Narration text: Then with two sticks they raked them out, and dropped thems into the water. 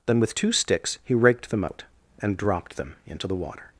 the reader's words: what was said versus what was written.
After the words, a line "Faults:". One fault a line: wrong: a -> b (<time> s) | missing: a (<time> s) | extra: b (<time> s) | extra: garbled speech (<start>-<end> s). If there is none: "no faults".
Then with two sticks he raked them out, and dropped them into the water.
Faults:
wrong: they -> he (1.0 s)
wrong: thems -> them (2.8 s)